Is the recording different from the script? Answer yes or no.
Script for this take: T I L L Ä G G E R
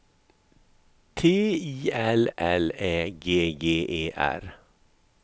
no